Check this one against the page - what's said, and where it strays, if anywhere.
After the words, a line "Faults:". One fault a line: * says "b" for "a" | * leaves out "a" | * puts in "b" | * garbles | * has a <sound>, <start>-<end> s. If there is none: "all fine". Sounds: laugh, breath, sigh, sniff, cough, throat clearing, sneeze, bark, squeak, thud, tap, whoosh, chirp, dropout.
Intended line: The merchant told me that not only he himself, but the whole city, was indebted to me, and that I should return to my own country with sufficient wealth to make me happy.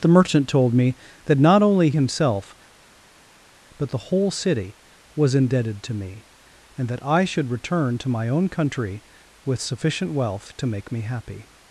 The merchant told me that not only himself, but the whole city, was indebted to me, and that I should return to my own country with sufficient wealth to make me happy.
Faults:
* leaves out "he"